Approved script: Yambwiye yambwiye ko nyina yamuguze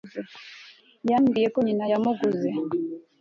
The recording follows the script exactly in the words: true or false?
false